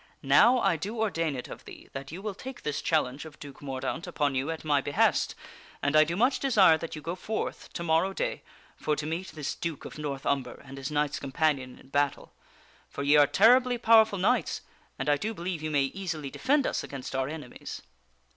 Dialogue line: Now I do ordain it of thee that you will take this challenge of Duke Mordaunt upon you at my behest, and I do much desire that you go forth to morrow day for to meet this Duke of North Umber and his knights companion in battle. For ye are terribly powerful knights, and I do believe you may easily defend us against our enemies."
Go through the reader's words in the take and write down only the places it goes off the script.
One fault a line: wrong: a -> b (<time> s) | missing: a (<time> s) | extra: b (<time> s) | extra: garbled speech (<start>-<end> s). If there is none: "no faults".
no faults